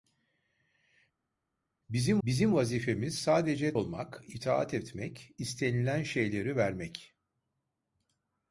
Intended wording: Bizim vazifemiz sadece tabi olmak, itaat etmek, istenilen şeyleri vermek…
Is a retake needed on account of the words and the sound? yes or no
yes